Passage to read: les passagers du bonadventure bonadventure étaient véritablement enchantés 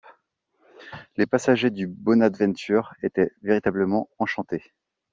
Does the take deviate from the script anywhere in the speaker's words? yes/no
yes